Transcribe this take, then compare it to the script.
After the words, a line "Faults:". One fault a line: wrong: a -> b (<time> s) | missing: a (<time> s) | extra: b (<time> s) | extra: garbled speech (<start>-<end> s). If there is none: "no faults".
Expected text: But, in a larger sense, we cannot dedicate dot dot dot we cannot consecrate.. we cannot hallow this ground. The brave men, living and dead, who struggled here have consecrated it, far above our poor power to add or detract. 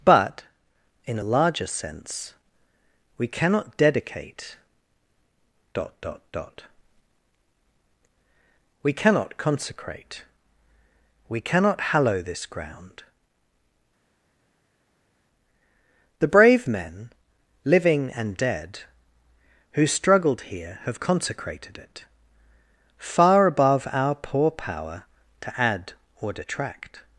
But, in a larger sense, we cannot dedicate dot dot dot we cannot consecrate.. we cannot hallow this ground. The brave men, living and dead, who struggled here have consecrated it, far above our poor power to add or detract.
Faults:
no faults